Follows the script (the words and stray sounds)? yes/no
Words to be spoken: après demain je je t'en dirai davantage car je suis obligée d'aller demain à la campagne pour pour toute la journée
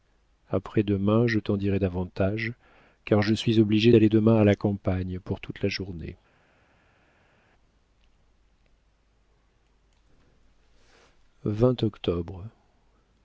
no